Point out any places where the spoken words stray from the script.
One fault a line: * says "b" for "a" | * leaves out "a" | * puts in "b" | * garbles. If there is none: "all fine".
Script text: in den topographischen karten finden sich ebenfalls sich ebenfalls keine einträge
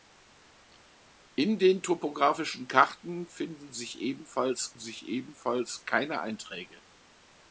all fine